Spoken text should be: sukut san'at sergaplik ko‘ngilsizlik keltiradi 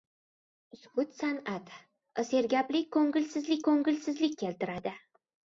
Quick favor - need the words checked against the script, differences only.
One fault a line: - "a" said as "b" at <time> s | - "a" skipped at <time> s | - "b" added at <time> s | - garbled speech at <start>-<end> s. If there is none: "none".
- "ko‘ngilsizlik" added at 3.7 s